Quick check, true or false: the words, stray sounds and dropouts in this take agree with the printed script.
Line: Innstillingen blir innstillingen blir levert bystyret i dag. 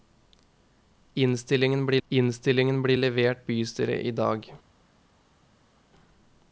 true